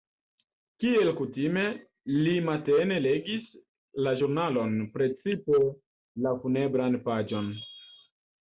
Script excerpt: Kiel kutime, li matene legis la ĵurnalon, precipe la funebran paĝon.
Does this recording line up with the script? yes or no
yes